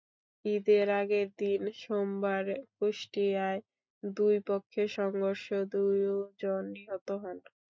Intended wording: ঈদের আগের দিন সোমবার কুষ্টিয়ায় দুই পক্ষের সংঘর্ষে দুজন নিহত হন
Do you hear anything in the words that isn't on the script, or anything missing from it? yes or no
no